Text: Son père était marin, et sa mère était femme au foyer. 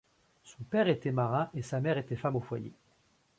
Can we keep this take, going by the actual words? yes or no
yes